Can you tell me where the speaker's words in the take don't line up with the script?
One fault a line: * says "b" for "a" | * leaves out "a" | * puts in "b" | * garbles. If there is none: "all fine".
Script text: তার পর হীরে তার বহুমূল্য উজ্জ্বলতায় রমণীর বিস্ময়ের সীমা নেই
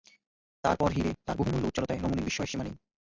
all fine